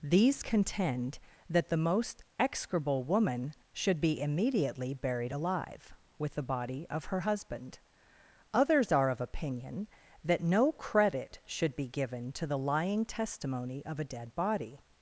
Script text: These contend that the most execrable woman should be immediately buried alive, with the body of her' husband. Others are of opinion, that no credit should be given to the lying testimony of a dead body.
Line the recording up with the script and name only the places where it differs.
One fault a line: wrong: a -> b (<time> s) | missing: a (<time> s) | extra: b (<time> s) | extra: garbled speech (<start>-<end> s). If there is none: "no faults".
no faults